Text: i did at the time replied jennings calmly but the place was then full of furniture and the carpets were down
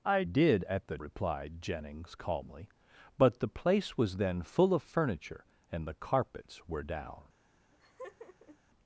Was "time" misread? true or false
true